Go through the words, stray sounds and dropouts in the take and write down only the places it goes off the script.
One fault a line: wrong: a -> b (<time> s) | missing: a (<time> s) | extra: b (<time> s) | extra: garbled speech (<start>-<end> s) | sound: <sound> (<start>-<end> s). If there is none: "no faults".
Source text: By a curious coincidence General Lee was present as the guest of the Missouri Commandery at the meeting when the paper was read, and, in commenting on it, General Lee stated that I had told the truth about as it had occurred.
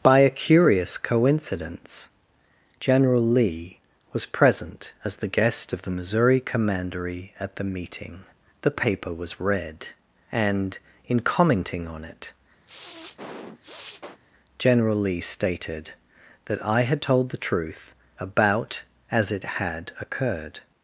missing: when (8.2 s)
sound: sniff (12.6-14.2 s)